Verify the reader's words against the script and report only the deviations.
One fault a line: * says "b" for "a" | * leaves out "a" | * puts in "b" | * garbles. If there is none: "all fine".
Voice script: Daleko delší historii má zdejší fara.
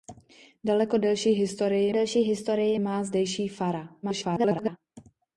* puts in "delší historii"
* garbles